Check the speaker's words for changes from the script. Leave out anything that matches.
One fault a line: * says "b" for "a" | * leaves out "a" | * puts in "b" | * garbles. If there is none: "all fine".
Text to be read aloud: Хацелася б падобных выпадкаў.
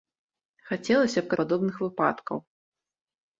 all fine